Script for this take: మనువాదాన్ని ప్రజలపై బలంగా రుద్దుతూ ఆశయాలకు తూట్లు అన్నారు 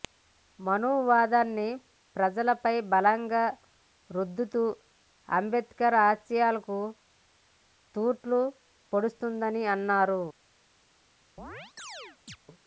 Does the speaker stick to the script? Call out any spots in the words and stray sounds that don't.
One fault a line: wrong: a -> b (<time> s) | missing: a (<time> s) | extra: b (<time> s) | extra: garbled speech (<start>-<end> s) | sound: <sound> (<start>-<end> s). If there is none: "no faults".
extra: అంబేద్కర్ (5.3 s)
extra: పొడుస్తోందని (8.9 s)
sound: chirp (11.4-12.4 s)